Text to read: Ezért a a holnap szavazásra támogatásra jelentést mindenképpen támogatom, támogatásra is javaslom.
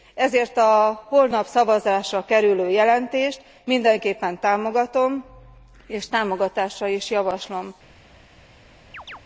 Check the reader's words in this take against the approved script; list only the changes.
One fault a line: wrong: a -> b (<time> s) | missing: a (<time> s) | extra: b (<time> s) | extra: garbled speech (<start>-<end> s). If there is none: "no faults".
missing: a (1.0 s)
wrong: támogatásra -> kerülő (2.2 s)
extra: és (5.9 s)